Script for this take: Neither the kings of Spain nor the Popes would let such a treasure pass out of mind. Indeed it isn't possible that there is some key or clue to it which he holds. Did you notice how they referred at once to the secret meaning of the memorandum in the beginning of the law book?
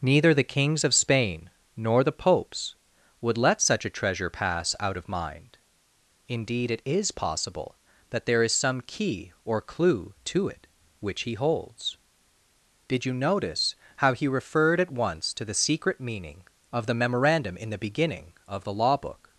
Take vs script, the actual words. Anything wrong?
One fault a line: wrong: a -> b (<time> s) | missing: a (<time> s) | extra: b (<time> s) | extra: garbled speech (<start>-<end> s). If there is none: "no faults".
wrong: isn't -> is (6.8 s)
wrong: they -> he (14.1 s)